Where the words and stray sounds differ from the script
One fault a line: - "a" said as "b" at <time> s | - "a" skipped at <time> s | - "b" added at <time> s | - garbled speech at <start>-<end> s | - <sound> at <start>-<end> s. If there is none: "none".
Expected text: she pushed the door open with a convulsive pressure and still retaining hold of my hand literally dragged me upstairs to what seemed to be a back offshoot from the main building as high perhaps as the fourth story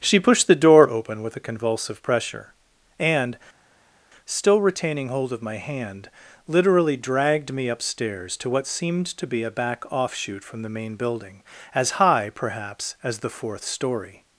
none